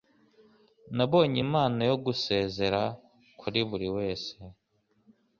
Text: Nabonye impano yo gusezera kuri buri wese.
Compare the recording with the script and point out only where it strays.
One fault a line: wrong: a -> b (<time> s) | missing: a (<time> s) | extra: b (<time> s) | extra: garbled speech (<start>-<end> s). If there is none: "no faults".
no faults